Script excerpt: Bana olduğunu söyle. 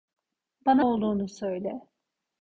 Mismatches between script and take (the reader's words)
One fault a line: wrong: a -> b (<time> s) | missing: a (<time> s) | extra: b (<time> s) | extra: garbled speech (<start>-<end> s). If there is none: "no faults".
no faults